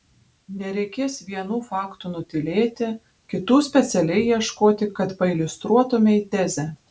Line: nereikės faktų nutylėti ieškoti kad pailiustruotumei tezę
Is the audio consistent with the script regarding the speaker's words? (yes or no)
no